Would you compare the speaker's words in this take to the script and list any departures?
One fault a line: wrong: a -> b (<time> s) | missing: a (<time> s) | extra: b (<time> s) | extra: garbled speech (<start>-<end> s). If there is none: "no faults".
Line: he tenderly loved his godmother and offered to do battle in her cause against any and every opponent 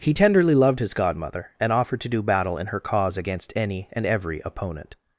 no faults